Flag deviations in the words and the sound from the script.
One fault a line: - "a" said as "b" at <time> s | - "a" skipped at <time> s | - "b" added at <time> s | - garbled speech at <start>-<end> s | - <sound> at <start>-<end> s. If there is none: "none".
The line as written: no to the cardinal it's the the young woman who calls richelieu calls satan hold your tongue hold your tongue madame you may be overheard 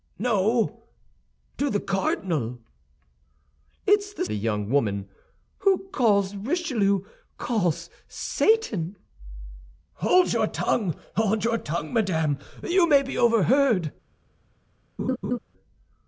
- laugh at 15.0-15.4 s